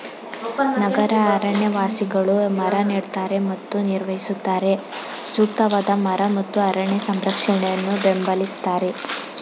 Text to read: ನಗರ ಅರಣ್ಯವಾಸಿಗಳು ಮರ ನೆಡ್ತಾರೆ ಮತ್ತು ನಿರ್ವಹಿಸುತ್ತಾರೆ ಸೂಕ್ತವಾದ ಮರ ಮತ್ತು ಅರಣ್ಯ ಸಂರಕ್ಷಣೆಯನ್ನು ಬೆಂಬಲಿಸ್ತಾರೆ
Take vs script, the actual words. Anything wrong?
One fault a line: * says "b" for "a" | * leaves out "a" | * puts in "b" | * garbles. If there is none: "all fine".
all fine